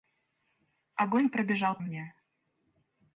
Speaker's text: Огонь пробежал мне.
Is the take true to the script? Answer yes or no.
yes